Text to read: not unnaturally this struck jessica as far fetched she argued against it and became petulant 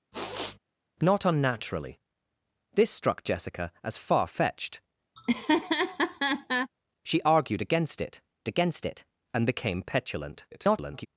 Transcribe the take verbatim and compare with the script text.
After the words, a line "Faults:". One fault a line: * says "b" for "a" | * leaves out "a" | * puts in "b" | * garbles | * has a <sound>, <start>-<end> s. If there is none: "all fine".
not unnaturally this struck jessica as far fetched she argued against it against it and became petulant [garbled]
Faults:
* has a sniff, 0.1-0.6 s
* has a laugh, 5.2-6.7 s
* puts in "against it"
* garbles